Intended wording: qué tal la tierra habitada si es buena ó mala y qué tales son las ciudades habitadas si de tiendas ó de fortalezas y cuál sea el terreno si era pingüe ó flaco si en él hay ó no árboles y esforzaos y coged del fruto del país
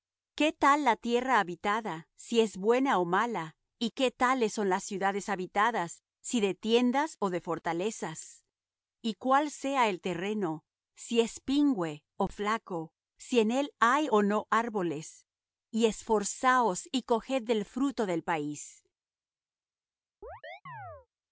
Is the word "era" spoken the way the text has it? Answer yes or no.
no